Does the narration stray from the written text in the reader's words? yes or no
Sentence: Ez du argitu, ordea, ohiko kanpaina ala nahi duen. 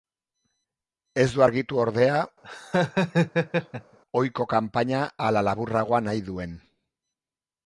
yes